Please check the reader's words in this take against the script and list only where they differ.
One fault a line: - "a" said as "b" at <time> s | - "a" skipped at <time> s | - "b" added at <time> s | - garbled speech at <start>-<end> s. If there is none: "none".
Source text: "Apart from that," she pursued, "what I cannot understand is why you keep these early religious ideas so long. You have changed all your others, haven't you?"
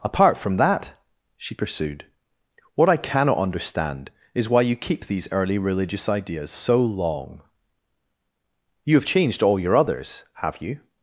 - "haven't" said as "have" at 10.3 s